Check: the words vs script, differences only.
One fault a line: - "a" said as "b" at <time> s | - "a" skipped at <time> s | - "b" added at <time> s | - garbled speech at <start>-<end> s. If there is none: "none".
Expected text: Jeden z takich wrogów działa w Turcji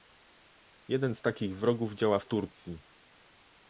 none